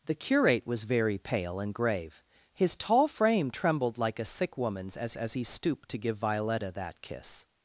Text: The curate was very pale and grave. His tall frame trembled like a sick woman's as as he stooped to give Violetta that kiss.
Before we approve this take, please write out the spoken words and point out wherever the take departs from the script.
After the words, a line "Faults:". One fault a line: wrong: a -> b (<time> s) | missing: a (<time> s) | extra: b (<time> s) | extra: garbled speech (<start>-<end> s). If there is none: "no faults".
The curate was very pale and grave. His tall frame trembled like a sick woman's as as he stooped to give Violetta that kiss.
Faults:
no faults